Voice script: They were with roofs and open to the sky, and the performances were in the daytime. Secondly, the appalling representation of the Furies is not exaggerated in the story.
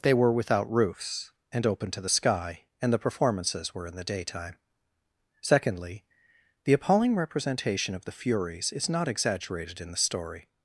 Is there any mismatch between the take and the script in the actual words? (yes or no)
yes